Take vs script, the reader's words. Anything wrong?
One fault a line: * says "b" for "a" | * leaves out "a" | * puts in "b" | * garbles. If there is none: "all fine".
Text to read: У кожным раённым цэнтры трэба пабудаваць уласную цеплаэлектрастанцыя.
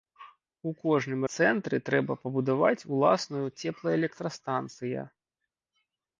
* leaves out "раённым"